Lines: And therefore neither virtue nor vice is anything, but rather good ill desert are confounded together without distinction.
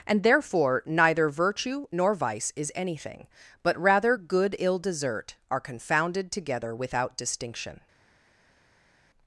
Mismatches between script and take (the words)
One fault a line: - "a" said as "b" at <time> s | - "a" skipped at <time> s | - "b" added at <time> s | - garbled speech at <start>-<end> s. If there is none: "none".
none